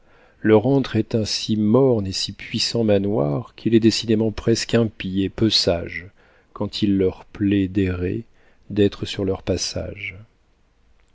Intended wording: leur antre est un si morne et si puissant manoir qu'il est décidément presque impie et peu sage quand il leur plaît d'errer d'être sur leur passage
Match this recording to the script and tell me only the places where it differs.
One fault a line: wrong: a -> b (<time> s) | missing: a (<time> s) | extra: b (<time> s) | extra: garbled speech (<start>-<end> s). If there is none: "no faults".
no faults